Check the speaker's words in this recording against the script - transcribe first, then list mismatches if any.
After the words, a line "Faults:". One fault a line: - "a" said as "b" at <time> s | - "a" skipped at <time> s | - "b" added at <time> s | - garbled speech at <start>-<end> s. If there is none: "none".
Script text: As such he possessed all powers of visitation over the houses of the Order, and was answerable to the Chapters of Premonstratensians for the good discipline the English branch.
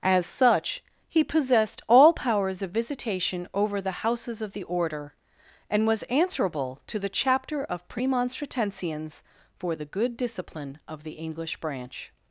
As such he possessed all powers of visitation over the houses of the Order, and was answerable to the Chapter of Premonstratensians for the good discipline of the English branch.
Faults:
- "Chapters" said as "Chapter" at 7.1 s
- "of" added at 10.9 s